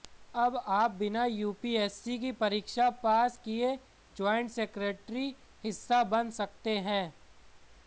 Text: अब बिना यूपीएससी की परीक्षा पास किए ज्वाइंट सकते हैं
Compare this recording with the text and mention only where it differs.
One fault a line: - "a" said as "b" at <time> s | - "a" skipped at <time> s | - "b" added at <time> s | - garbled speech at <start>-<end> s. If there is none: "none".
- "आप" added at 0.7 s
- "सेक्रेटरी हिस्सा बन" added at 4.5 s